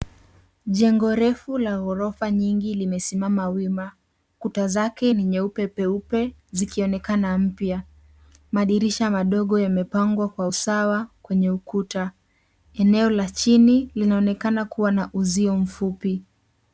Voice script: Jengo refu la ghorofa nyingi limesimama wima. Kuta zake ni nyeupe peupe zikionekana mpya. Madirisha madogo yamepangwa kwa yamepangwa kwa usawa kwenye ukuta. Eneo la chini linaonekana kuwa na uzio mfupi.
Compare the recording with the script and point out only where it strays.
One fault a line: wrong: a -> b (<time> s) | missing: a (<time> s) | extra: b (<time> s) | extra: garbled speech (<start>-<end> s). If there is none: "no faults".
missing: yamepangwa kwa (10.5 s)